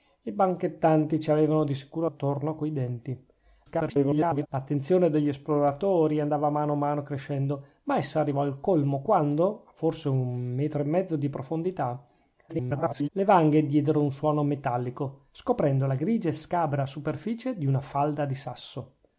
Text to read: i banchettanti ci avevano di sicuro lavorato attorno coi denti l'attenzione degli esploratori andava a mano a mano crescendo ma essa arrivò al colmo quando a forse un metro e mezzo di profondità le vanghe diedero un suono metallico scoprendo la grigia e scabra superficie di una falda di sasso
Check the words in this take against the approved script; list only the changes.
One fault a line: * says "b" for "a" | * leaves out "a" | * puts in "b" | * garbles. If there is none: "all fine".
* leaves out "lavorato"
* garbles
* garbles